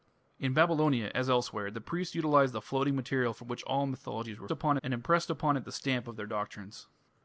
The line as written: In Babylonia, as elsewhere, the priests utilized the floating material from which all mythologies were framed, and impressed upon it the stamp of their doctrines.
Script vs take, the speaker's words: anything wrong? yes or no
yes